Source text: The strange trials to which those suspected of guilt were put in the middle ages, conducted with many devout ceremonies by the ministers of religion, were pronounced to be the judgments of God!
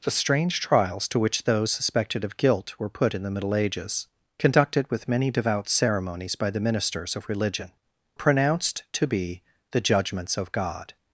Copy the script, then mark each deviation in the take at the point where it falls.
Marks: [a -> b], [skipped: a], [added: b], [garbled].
The strange trials to which those suspected of guilt were put in the middle ages, conducted with many devout ceremonies by the ministers of religion, [skipped: were] pronounced to be the judgments of God!